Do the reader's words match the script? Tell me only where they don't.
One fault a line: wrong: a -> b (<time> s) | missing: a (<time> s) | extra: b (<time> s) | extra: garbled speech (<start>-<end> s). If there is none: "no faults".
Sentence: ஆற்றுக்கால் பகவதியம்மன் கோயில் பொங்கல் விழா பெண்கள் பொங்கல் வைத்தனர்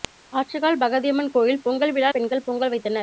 no faults